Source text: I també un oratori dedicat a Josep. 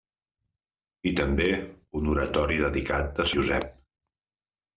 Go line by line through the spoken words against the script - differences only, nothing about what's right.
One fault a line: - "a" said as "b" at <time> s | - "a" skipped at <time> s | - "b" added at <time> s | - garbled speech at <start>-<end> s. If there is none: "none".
none